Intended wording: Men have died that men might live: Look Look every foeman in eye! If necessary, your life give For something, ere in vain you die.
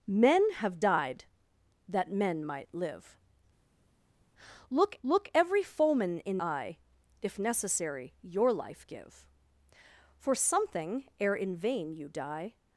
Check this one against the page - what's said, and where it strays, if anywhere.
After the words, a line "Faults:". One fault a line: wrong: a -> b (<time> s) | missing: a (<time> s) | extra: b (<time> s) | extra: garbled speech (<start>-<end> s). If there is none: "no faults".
Men have died that men might live: Look Look every foeman in eye! If necessary, your life give For something, ere in vain you die.
Faults:
no faults